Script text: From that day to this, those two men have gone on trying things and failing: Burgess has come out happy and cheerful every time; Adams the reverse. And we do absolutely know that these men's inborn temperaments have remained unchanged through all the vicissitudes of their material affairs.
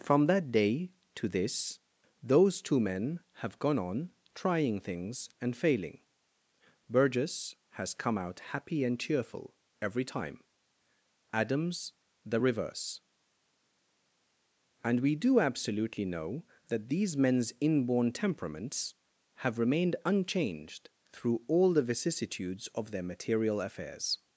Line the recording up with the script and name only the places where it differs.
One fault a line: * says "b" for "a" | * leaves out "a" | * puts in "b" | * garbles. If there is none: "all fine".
all fine